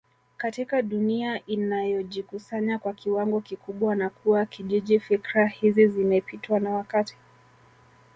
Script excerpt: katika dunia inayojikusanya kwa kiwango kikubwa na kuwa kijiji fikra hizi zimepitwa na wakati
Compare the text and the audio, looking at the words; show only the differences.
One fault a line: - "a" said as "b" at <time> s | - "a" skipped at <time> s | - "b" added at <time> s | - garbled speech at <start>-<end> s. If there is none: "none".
none